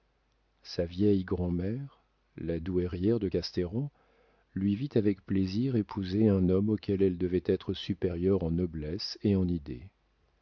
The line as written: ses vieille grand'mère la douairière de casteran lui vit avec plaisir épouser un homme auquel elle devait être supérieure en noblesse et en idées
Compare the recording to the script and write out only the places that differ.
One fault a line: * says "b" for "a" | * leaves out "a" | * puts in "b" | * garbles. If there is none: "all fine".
* says "sa" for "ses"